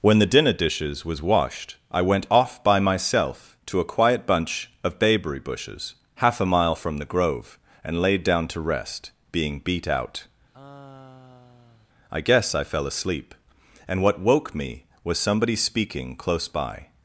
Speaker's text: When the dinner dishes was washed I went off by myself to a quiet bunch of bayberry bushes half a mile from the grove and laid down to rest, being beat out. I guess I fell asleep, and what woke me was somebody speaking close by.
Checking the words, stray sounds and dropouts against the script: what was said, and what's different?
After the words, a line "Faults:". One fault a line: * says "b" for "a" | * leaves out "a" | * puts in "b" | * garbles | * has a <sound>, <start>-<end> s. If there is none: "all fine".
When the dinner dishes was washed I went off by myself to a quiet bunch of bayberry bushes half a mile from the grove and laid down to rest, being beat out. I guess I fell asleep, and what woke me was somebody speaking close by.
Faults:
* has a sigh, 10.5-11.9 s